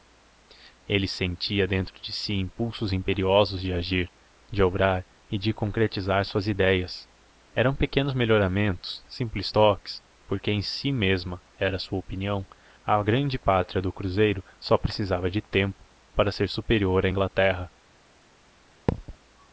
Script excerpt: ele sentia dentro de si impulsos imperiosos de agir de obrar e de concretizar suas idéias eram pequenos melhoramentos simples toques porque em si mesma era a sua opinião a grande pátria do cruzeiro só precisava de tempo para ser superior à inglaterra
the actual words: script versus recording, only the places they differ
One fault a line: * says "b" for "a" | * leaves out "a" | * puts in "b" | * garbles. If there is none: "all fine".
all fine